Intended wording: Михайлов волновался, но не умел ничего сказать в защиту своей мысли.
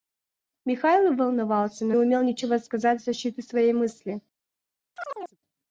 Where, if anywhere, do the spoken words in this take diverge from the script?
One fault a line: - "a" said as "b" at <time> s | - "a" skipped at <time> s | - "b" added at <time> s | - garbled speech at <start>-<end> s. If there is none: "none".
- "не" skipped at 1.9 s